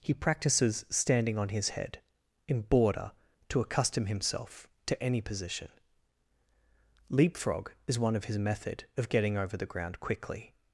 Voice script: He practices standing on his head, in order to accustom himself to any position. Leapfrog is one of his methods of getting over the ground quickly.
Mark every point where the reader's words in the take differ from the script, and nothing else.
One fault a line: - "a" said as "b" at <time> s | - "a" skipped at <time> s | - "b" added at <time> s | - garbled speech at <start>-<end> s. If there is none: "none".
- "order" said as "border" at 2.6 s
- "methods" said as "method" at 8.4 s